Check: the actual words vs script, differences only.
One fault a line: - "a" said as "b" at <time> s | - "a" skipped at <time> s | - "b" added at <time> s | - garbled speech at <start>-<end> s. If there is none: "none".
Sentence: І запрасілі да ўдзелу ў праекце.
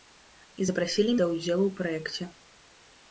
none